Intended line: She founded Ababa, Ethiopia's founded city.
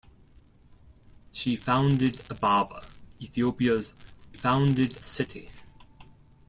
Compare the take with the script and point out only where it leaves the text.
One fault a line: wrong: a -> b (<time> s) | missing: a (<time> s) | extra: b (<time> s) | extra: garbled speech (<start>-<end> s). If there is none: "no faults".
no faults